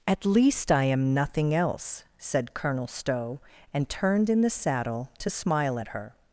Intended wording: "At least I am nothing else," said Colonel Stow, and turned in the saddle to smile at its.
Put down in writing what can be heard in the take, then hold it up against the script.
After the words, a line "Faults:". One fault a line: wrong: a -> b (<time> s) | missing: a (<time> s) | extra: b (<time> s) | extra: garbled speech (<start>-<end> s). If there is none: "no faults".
"At least I am nothing else," said Colonel Stow, and turned in the saddle to smile at her.
Faults:
wrong: its -> her (5.9 s)